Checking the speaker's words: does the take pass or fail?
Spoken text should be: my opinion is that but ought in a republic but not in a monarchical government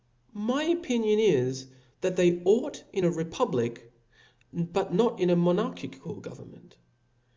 fail